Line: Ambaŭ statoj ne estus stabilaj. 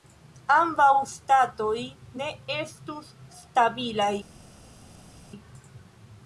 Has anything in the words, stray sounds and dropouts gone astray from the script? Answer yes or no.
no